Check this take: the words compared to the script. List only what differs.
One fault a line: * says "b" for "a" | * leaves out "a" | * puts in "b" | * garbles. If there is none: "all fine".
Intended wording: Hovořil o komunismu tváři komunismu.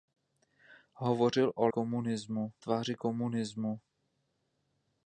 all fine